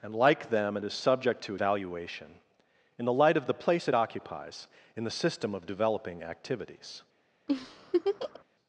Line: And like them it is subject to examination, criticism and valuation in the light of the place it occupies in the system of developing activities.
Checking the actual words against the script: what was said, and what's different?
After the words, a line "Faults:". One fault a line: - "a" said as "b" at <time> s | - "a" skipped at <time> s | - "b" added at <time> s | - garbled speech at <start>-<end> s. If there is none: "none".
And like them it is subject to valuation in the light of the place it occupies in the system of developing activities.
Faults:
- "examination criticism and" skipped at 1.6 s